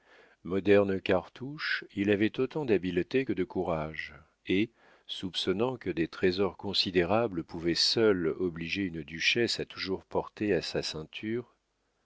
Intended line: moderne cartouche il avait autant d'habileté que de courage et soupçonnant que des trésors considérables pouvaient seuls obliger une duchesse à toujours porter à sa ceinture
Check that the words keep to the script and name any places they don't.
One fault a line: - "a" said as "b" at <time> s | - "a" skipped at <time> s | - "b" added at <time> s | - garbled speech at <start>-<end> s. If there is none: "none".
none